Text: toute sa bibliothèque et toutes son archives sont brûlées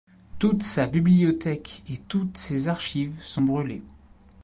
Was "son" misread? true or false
true